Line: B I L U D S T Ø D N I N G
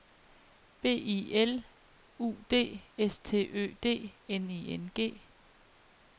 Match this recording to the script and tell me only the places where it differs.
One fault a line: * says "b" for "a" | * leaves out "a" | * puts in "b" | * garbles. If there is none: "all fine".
all fine